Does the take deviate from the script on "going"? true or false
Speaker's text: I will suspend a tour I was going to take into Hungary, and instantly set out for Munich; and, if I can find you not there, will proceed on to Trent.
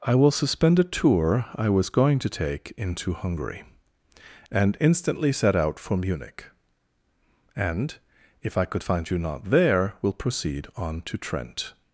false